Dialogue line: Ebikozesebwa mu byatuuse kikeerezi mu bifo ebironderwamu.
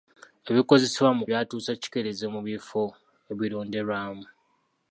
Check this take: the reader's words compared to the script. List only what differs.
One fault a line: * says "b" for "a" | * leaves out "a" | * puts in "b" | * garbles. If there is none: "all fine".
all fine